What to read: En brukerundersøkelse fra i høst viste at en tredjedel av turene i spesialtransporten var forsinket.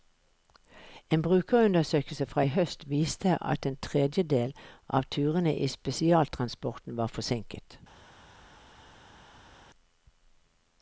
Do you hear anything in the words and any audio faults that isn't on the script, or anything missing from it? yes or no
no